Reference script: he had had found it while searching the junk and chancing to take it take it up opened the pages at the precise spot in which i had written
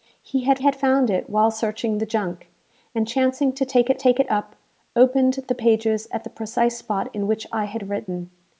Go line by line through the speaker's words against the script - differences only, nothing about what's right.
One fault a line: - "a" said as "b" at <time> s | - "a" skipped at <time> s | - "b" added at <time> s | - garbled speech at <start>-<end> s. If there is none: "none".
none